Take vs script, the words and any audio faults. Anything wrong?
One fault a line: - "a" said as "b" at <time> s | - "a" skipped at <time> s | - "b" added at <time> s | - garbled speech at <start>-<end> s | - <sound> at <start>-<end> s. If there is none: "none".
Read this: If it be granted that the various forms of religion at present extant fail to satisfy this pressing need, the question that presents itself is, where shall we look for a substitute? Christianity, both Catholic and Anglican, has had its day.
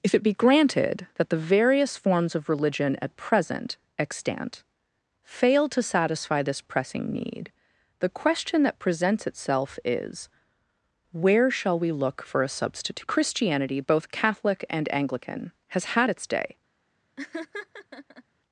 - laugh at 17.2-18.2 s